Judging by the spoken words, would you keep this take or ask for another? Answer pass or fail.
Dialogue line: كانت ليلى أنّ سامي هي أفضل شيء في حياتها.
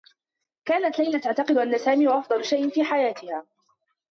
fail